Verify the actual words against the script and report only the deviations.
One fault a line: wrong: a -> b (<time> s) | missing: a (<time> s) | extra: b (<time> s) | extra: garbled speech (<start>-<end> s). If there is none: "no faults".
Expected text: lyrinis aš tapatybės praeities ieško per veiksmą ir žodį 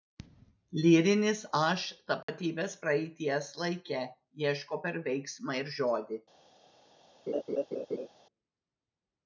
extra: laike (3.6 s)